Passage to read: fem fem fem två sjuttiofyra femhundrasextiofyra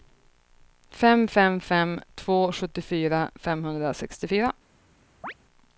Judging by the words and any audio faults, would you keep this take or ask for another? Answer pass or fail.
fail